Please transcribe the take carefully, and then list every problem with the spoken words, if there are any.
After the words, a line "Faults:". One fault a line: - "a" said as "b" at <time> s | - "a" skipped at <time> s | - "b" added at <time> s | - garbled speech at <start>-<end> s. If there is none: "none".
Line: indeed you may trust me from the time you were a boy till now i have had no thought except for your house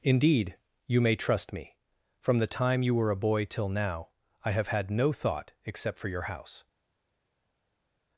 indeed you may trust me from the time you were a boy till now i have had no thought except for your house
Faults:
none